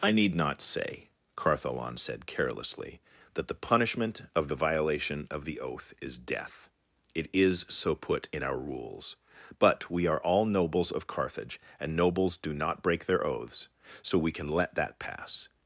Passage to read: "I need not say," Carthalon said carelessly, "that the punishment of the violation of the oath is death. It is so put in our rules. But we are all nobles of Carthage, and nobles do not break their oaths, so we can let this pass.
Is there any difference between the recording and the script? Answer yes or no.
yes